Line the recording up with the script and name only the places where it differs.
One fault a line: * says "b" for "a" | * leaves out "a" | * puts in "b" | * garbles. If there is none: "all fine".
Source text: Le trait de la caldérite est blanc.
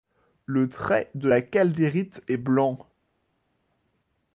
all fine